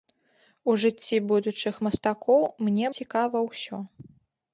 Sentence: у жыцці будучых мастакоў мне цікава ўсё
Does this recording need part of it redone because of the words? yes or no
no